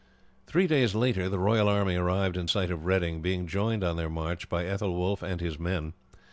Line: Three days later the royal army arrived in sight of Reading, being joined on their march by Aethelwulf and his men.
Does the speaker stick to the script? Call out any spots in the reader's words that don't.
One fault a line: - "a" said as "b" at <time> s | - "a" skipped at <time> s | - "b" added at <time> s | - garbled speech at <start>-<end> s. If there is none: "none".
none